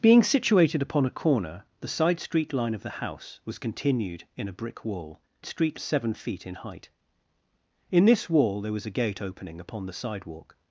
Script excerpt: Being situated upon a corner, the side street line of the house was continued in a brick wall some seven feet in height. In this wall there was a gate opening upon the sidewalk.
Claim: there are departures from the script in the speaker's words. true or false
true